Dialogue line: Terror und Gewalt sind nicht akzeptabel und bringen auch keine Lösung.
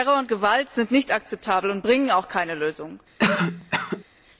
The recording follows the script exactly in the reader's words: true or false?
true